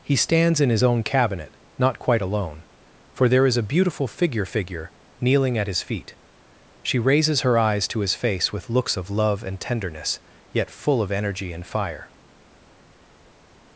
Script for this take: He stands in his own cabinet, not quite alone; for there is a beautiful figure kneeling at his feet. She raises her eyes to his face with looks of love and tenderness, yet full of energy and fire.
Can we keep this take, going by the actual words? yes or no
no